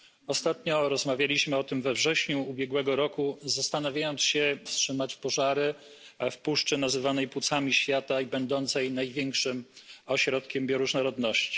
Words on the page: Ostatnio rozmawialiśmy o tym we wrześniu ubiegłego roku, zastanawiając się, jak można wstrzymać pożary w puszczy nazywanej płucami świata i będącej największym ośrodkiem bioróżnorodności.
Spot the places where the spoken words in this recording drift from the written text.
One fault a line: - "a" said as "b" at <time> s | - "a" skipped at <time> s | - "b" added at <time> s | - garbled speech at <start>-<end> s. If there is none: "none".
- "jak można" skipped at 4.6 s